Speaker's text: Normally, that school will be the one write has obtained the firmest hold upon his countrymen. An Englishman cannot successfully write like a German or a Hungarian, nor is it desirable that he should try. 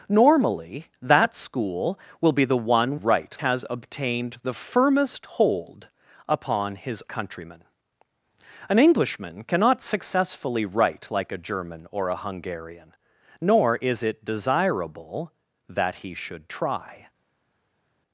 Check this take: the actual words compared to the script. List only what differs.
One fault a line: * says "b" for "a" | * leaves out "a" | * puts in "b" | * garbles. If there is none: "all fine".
all fine